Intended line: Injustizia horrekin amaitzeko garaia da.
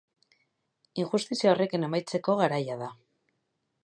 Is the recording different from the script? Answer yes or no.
no